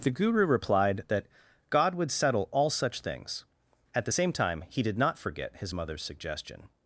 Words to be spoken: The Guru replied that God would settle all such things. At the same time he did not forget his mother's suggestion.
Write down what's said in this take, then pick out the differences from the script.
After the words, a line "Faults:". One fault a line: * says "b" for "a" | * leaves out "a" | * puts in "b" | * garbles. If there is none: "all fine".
The Guru replied that God would settle all such things. At the same time he did not forget his mother's suggestion.
Faults:
all fine